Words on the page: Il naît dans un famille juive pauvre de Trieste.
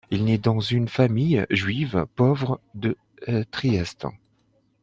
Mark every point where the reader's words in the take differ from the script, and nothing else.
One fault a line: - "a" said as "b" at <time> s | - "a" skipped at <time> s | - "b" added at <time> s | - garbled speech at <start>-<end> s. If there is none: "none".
- "un" said as "une" at 0.6 s